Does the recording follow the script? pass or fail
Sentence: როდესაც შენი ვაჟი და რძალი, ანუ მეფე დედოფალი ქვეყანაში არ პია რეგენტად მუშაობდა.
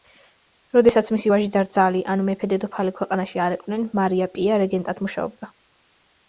fail